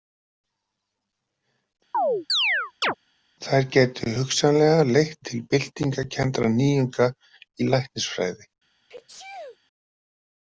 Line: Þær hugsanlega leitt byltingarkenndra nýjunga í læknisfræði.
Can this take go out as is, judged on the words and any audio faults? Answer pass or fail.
fail